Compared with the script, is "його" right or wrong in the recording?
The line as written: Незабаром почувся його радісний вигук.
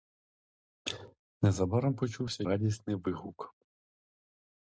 wrong